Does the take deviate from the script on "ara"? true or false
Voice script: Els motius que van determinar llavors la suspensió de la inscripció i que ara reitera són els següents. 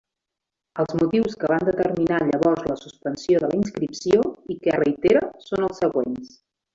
true